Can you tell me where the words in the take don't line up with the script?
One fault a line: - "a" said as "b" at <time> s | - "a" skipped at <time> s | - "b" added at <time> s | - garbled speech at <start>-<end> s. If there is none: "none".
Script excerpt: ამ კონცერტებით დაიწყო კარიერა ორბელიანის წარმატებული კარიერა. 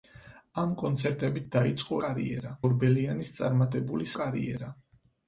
none